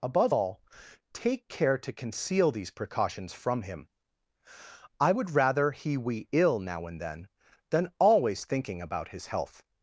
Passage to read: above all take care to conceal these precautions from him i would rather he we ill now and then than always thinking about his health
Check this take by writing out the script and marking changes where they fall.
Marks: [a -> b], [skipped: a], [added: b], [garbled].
above all take care to conceal these precautions from him i would rather he we ill now and then than always thinking about his health